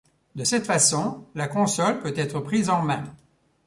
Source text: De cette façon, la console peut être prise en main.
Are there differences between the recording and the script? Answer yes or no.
no